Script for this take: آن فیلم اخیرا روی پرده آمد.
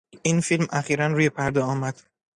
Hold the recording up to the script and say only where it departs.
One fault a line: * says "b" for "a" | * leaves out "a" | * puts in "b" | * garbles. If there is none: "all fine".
* says "این" for "آن"